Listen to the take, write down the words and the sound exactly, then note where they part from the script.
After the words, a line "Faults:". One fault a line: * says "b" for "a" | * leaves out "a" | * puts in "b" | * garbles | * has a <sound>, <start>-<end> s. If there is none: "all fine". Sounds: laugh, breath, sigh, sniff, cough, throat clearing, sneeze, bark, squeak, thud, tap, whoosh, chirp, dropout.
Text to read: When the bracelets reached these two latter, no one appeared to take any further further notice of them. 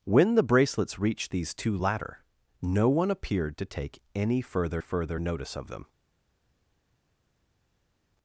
When the bracelets reached these two latter, no one appeared to take any further further notice of them.
Faults:
all fine